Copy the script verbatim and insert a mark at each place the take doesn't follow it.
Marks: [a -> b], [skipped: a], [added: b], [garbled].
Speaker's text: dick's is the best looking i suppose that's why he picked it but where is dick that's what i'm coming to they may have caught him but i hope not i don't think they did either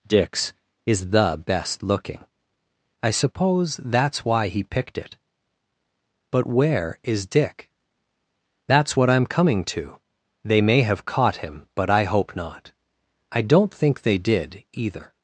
dick's is the best looking i suppose that's why he picked it but where is dick that's what i'm coming to they may have caught him but i hope not i don't think they did either